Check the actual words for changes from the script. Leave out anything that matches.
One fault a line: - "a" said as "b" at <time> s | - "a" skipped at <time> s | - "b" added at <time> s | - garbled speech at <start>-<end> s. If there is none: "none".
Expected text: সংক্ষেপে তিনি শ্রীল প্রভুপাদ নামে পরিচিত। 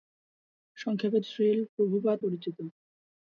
- "তিনি" skipped at 1.2 s
- "নামে" skipped at 2.2 s